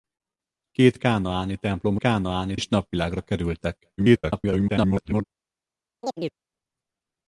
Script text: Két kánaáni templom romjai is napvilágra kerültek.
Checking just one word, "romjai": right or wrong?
wrong